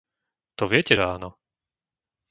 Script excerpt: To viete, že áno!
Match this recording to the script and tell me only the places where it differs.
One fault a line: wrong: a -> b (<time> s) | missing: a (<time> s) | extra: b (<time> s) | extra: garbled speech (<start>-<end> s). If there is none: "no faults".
no faults